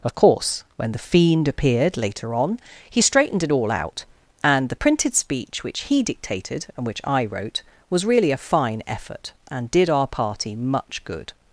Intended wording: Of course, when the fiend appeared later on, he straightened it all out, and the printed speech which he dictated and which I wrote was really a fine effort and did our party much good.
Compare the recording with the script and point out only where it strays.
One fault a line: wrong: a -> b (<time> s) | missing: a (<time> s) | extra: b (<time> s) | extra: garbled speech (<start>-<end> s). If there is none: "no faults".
no faults